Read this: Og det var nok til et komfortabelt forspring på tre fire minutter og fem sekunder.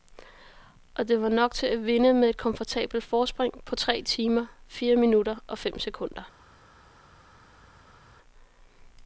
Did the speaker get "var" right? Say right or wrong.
right